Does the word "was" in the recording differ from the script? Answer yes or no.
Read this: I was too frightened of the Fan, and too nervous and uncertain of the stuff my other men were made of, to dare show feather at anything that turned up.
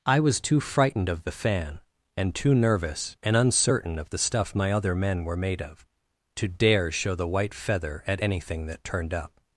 no